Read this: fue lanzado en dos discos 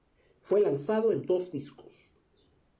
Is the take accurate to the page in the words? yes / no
yes